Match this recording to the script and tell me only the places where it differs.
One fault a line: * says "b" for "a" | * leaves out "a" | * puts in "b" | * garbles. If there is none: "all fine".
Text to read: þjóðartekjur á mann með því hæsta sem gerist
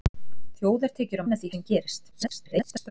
* leaves out "mann"
* leaves out "hæsta"
* garbles